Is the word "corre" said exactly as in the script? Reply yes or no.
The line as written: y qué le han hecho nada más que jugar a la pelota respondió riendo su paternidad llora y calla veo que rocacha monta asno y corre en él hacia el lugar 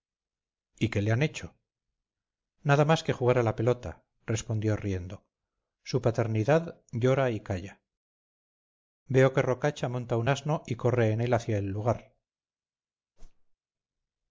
yes